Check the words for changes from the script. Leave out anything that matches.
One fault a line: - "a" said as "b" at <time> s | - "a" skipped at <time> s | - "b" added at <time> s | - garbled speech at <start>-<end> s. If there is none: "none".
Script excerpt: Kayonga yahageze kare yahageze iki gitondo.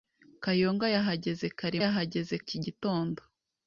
none